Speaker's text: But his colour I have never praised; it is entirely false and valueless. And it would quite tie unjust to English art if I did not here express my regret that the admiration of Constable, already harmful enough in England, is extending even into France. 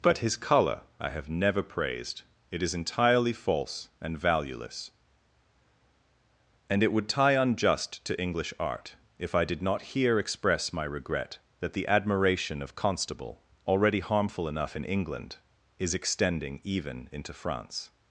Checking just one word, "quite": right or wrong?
wrong